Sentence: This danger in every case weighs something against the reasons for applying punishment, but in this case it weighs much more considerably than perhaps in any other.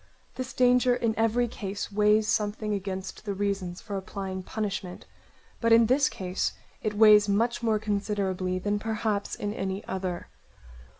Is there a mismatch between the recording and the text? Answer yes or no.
no